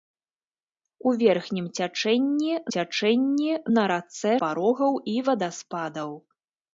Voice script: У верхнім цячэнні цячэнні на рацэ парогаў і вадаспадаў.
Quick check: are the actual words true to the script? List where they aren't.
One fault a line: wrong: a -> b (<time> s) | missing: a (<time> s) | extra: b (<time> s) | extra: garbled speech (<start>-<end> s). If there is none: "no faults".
no faults